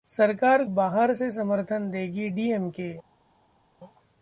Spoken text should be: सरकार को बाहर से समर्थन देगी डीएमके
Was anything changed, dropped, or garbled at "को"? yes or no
yes